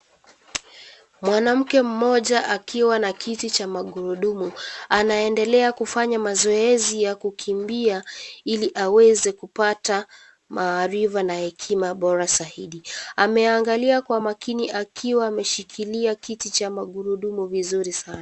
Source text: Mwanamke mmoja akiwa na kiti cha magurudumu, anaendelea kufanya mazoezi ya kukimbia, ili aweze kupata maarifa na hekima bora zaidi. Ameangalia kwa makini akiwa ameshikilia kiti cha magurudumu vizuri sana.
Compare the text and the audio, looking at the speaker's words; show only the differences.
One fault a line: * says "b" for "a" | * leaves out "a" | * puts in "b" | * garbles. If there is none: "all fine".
all fine